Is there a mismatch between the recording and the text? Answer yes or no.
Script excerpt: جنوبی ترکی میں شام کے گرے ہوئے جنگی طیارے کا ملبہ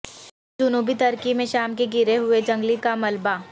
yes